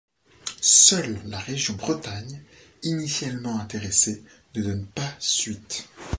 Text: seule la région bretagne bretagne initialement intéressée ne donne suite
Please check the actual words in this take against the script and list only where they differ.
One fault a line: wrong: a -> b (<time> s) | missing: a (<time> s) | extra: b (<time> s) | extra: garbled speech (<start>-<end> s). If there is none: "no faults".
missing: bretagne (2.4 s)
extra: pas (4.9 s)